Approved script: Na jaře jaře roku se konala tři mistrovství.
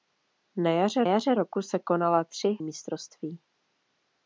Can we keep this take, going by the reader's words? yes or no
yes